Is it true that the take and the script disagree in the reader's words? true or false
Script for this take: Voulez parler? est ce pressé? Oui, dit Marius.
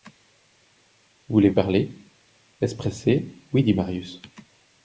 false